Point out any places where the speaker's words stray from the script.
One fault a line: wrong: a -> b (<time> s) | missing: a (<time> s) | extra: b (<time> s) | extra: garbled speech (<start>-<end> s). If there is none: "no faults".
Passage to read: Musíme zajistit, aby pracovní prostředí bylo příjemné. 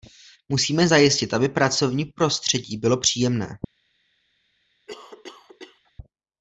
no faults